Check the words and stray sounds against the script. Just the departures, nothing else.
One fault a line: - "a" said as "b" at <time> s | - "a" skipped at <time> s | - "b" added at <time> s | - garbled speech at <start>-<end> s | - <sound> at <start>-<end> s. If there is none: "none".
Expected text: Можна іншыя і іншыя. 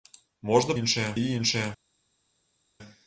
none